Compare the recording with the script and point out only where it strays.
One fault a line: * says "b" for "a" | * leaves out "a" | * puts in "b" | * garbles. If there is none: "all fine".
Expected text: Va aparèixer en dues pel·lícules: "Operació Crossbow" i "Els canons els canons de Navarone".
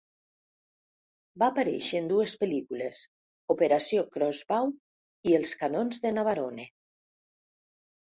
* leaves out "els canons"